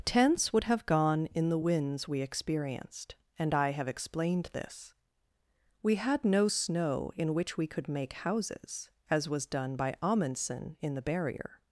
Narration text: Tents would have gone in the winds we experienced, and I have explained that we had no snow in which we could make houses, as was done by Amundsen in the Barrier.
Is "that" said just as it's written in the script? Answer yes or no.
no